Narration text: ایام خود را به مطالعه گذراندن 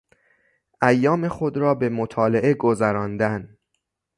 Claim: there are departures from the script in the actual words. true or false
false